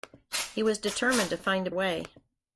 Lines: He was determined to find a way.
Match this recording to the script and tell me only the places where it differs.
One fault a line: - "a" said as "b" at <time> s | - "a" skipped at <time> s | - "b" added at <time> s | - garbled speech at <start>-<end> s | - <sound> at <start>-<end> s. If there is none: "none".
none